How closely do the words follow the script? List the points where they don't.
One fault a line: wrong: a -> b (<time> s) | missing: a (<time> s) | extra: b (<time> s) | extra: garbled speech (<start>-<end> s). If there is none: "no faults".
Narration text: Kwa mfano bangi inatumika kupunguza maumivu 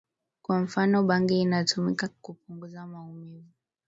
no faults